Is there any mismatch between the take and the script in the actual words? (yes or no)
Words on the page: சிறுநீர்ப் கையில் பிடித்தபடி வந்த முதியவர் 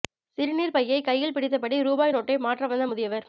yes